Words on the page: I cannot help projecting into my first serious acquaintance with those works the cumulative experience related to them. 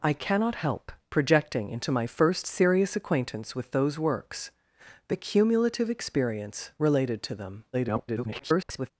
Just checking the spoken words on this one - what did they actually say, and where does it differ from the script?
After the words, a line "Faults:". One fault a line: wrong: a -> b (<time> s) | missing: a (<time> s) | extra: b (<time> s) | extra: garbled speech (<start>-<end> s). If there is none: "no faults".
I cannot help projecting into my first serious acquaintance with those works the cumulative experience related to them. [garbled]
Faults:
extra: garbled speech (7.7-8.9 s)